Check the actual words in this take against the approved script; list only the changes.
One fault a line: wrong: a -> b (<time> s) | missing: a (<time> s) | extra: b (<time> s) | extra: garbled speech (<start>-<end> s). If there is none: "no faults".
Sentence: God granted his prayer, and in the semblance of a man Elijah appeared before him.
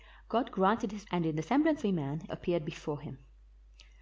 missing: prayer (1.1 s)
missing: of (1.8 s)
missing: Elijah (2.2 s)